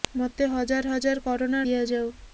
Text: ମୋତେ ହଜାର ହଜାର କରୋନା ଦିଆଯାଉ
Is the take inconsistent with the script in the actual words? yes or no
no